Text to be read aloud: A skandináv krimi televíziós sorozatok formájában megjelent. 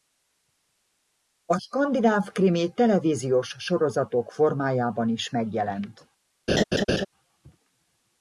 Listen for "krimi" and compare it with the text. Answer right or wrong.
right